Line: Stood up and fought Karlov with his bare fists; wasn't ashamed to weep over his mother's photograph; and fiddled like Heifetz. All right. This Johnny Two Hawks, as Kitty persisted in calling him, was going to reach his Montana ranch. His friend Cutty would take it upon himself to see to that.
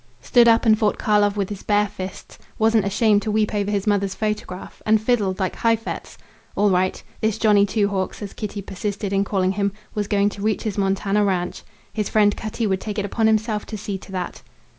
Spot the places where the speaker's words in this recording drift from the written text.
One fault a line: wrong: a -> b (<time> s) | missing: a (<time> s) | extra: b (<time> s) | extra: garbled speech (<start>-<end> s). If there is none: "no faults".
no faults